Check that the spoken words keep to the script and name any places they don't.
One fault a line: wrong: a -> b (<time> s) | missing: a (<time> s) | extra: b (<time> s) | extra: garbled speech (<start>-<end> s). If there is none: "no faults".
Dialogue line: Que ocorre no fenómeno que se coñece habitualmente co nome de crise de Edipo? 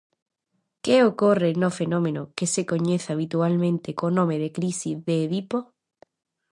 no faults